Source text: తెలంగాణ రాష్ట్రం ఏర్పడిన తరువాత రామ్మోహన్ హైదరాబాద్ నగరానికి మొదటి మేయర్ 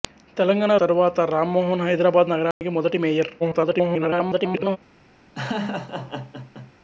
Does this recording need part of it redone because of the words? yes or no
yes